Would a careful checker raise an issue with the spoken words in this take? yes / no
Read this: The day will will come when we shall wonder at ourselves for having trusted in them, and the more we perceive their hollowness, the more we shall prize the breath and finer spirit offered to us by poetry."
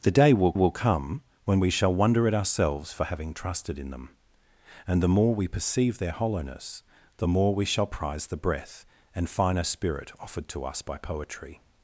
no